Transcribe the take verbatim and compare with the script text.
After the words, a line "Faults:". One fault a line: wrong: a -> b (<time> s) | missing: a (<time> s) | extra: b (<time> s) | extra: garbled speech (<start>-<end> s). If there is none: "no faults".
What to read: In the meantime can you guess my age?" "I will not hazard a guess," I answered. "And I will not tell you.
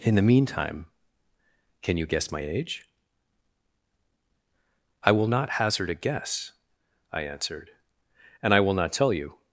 In the meantime can you guess my age?" "I will not hazard a guess," I answered. "And I will not tell you.
Faults:
no faults